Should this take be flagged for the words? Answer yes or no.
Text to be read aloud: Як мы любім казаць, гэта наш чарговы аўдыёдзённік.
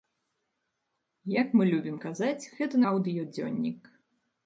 yes